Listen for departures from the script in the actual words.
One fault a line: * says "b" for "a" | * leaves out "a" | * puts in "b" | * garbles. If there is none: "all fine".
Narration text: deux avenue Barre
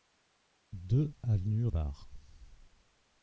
all fine